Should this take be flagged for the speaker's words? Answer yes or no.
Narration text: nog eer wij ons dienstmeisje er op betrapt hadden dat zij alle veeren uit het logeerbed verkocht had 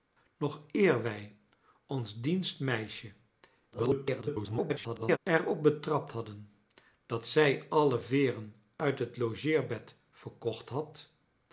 yes